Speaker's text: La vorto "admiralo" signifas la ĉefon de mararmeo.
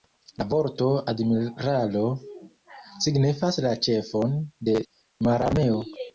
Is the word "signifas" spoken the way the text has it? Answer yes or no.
yes